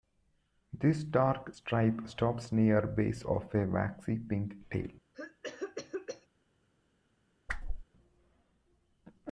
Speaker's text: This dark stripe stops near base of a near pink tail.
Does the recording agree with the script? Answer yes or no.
no